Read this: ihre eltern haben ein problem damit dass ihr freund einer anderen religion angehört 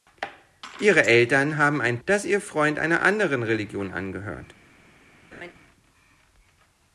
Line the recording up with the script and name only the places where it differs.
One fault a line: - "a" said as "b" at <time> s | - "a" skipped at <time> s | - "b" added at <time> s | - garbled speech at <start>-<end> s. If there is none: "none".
- "problem damit" skipped at 2.0 s